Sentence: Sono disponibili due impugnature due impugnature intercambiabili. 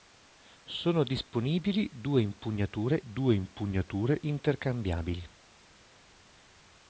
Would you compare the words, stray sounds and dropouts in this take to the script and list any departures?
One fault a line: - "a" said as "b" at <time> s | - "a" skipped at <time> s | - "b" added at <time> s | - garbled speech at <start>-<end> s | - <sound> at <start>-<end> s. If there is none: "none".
none